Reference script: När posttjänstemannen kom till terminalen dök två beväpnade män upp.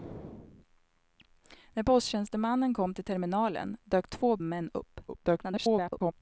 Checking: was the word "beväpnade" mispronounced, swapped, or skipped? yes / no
yes